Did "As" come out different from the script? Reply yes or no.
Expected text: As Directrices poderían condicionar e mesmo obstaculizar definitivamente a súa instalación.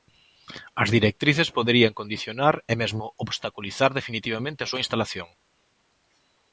no